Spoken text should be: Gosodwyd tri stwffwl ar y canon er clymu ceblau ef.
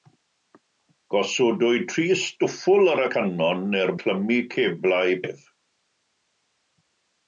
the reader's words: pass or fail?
pass